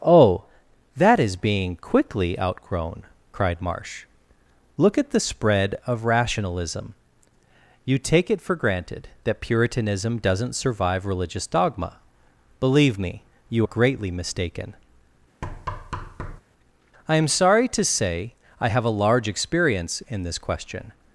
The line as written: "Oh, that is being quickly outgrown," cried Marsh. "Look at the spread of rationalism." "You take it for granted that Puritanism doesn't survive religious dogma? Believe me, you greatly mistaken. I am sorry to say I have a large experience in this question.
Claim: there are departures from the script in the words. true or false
false